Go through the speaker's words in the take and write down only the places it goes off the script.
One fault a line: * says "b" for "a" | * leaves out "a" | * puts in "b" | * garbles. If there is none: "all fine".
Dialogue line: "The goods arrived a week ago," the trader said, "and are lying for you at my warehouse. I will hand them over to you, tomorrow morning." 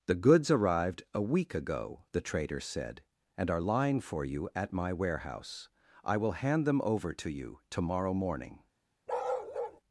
all fine